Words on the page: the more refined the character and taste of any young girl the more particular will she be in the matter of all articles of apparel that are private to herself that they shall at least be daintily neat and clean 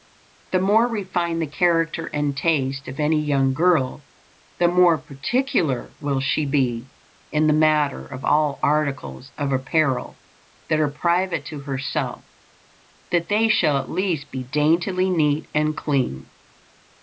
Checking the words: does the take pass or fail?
pass